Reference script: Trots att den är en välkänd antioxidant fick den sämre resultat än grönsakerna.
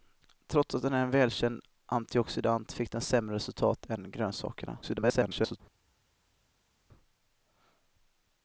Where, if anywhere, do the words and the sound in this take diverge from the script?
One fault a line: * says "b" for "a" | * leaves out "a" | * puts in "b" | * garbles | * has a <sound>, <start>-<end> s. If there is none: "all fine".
* garbles